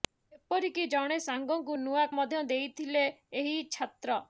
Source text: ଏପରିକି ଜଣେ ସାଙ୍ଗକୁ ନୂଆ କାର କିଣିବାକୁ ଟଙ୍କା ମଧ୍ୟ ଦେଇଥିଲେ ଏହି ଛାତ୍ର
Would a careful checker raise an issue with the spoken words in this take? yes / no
yes